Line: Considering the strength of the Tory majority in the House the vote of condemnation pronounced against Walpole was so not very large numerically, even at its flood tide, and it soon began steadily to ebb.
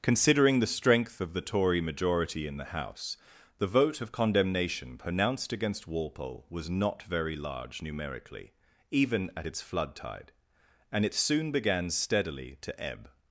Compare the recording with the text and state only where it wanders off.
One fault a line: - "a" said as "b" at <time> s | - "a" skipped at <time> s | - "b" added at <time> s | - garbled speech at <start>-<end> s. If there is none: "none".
- "so" skipped at 6.7 s